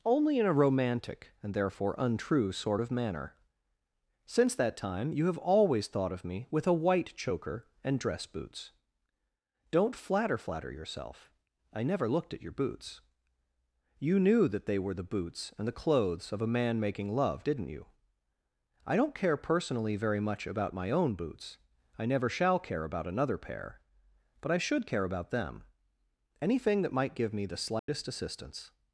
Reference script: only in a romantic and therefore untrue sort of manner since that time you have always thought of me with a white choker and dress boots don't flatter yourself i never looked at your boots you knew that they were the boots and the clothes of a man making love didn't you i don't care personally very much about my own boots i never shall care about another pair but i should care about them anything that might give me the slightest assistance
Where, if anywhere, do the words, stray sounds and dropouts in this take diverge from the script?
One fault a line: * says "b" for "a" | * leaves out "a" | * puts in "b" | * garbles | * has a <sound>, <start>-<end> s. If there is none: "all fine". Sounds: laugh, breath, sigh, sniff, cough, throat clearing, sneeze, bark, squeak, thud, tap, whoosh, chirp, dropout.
* puts in "flatter"
* has a dropout, 27.8-27.9 s